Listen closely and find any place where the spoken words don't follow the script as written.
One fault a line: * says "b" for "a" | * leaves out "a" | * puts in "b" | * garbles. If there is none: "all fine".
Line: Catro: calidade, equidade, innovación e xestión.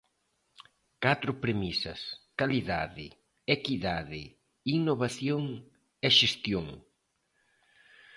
* puts in "premisas"